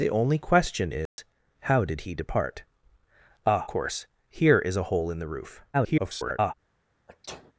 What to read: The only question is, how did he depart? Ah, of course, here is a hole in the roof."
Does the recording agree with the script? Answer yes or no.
no